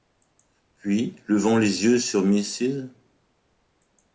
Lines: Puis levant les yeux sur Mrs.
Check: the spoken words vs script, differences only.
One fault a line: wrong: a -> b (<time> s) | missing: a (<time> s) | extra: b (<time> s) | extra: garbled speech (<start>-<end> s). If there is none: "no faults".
no faults